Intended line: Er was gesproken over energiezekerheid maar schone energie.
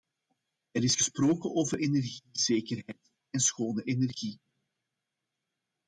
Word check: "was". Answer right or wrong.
wrong